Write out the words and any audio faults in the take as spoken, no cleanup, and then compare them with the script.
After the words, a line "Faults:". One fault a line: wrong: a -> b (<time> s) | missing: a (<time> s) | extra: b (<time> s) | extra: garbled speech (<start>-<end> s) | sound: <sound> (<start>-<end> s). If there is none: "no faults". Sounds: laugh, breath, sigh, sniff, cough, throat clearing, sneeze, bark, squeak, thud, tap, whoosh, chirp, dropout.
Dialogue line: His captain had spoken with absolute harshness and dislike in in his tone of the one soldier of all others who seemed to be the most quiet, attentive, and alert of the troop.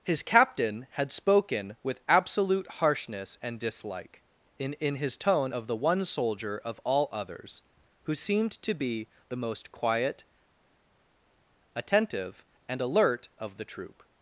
His captain had spoken with absolute harshness and dislike in in his tone of the one soldier of all others who seemed to be the most quiet, attentive, and alert of the troop.
Faults:
no faults